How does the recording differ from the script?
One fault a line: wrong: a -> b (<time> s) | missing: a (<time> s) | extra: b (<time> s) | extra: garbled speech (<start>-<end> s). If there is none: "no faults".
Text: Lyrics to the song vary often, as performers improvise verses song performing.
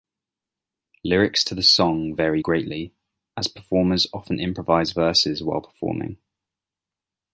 wrong: often -> greatly (2.4 s)
extra: often (4.1 s)
wrong: song -> while (5.4 s)